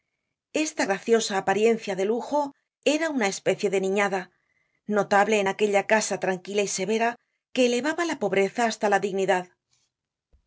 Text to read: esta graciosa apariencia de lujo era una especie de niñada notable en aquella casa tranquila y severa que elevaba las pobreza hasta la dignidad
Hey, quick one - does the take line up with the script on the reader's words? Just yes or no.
no